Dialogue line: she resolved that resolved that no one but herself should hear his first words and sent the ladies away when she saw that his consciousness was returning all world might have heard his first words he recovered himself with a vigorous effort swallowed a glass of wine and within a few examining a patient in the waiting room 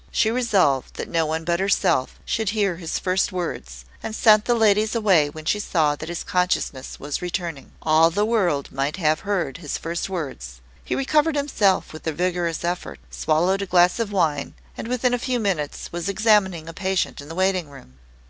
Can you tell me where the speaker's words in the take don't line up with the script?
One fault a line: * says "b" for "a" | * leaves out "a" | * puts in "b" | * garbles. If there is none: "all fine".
* leaves out "resolved that"
* puts in "the"
* puts in "minutes was"